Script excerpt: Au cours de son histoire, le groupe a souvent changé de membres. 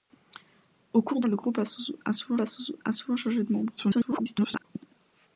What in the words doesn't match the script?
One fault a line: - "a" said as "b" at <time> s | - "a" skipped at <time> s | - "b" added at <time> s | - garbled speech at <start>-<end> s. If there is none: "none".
- "de son histoire le groupe" said as "le groupe a souvent" at 1.3 s
- garbled speech at 3.8-4.6 s